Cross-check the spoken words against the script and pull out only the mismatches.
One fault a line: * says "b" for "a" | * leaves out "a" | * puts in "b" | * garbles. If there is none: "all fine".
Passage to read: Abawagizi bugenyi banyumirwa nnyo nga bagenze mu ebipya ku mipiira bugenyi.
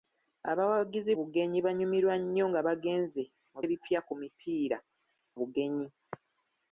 all fine